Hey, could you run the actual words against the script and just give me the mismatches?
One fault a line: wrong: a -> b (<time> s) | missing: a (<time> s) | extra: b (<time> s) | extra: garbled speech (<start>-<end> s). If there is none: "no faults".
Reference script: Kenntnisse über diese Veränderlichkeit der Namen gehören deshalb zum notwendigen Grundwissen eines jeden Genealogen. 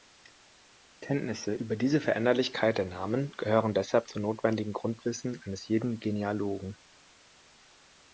no faults